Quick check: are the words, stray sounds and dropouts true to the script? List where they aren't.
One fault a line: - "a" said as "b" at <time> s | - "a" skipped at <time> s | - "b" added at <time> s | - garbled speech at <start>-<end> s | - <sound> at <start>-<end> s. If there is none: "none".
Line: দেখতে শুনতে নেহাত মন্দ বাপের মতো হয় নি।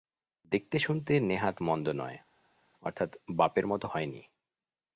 - "নয় অর্থাৎ" added at 1.9 s